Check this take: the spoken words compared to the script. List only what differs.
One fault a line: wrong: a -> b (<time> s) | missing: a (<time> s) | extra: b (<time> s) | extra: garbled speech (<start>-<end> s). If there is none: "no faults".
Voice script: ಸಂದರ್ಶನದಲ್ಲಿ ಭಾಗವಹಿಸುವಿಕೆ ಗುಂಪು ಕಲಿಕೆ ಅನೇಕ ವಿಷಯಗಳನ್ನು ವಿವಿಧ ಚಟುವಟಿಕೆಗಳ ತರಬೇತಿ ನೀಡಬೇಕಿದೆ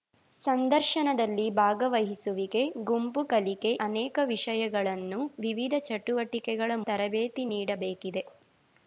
no faults